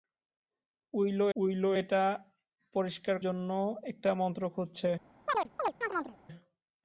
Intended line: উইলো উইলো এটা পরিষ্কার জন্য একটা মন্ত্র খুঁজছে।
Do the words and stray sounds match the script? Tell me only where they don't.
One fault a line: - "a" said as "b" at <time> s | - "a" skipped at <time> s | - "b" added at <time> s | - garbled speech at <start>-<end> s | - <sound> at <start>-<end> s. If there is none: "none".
- chirp at 5.3-6.2 s